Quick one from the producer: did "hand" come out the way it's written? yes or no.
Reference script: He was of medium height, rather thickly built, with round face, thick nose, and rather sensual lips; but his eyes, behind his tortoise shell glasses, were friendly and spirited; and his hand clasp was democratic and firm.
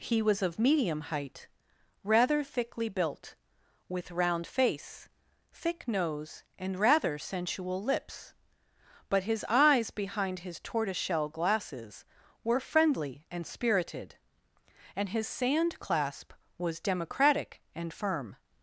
no